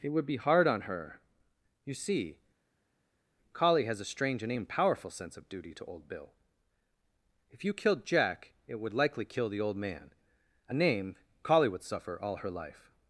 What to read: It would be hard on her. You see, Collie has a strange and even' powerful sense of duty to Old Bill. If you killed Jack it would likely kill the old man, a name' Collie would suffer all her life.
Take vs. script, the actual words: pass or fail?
pass